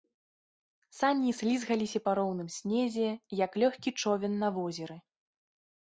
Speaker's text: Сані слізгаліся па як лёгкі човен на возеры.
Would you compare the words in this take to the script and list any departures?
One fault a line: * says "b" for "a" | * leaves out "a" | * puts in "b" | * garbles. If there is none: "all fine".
* puts in "роўным снезе"